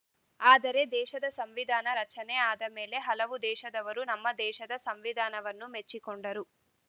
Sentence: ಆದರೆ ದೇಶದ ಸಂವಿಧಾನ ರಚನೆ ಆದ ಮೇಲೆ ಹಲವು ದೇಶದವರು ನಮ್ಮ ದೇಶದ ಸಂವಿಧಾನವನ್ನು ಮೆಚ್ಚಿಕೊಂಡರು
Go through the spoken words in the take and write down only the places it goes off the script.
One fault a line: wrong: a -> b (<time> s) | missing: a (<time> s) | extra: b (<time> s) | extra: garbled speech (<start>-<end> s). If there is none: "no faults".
no faults